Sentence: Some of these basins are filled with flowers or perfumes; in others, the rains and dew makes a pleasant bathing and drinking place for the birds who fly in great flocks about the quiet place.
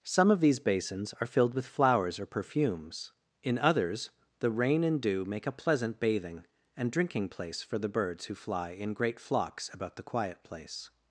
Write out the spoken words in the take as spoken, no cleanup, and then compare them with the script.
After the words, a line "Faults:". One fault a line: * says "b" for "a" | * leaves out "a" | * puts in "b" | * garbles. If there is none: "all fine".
Some of these basins are filled with flowers or perfumes; in others, the rain and dew make a pleasant bathing and drinking place for the birds who fly in great flocks about the quiet place.
Faults:
* says "rain" for "rains"
* says "make" for "makes"